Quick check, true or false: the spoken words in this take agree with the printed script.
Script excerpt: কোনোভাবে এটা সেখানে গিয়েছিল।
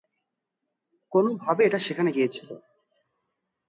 true